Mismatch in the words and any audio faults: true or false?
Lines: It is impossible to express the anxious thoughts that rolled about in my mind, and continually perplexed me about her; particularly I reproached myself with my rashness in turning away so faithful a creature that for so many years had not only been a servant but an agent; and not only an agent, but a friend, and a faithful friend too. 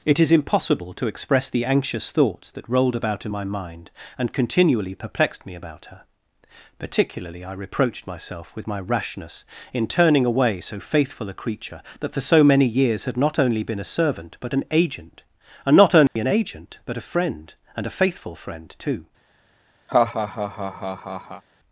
true